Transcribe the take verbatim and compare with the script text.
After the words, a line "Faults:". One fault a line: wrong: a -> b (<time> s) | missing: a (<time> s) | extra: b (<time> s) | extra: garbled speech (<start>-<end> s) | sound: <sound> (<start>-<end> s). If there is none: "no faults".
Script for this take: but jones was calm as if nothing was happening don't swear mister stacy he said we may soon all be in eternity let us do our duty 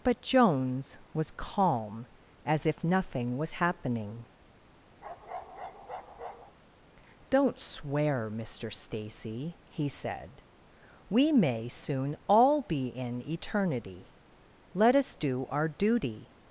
but jones was calm as if nothing was happening don't swear mister stacy he said we may soon all be in eternity let us do our duty
Faults:
sound: bark (5.0-6.6 s)